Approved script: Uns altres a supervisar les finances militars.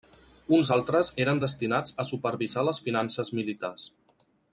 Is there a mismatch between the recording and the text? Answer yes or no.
yes